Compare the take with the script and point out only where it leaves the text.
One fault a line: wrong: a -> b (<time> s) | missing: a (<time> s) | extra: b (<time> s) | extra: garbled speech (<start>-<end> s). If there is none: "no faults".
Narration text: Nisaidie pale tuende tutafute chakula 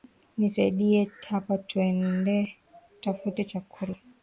wrong: pale -> hapa (1.3 s)